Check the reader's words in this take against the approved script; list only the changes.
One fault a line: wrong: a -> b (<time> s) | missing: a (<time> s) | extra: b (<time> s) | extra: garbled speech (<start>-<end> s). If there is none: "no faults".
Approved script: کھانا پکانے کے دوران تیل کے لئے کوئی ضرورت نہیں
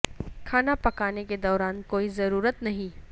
missing: تیل کے لئے (1.8 s)